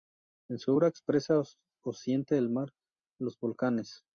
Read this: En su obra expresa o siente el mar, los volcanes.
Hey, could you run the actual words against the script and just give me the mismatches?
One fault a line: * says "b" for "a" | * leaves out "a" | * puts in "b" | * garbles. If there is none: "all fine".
all fine